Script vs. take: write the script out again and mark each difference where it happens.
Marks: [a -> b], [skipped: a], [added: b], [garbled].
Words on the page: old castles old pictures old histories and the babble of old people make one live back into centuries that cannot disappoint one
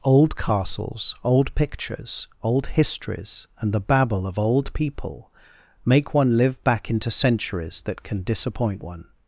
old castles old pictures old histories and the babble of old people make one live back into centuries that [cannot -> can] disappoint one